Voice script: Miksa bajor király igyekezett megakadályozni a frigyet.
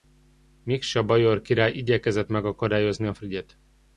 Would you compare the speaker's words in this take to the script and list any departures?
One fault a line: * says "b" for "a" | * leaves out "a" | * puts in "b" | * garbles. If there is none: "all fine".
all fine